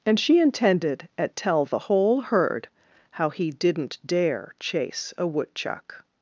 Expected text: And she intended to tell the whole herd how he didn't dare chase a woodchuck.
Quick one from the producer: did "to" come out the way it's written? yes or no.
no